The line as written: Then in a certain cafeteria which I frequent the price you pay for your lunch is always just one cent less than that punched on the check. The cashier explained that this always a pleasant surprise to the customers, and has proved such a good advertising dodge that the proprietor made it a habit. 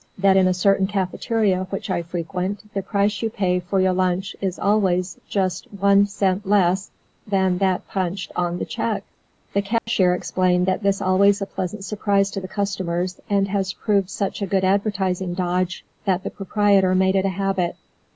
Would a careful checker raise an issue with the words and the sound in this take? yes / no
yes